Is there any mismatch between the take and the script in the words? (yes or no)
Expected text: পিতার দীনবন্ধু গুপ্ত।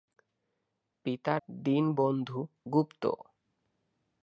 no